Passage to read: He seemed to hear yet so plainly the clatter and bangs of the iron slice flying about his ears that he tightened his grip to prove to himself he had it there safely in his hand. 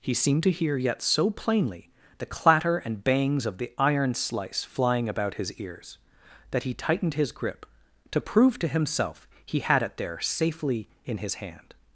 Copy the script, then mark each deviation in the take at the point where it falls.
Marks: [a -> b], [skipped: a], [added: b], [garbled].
He seemed to hear yet so plainly the clatter and bangs of the iron slice flying about his ears that he tightened his grip to prove to himself he had it there safely in his hand.